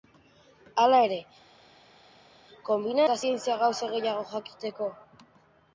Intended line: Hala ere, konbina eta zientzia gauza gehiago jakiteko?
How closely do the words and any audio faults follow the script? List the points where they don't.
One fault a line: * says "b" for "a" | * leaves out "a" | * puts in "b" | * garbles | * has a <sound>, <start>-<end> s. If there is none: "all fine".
all fine